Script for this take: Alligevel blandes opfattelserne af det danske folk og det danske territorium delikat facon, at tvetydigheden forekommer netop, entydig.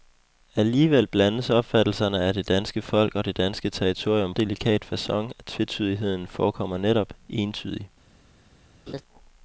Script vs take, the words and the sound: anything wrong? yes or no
yes